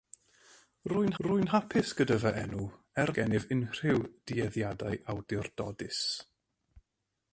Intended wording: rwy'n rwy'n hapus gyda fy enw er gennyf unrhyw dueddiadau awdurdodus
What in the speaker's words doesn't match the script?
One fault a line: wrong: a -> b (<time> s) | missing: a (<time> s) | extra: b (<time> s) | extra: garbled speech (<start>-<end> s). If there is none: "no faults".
no faults